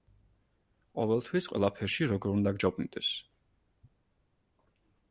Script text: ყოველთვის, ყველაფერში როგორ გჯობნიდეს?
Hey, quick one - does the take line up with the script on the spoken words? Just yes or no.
no